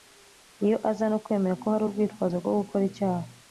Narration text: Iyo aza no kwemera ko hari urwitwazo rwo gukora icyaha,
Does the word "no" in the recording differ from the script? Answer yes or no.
no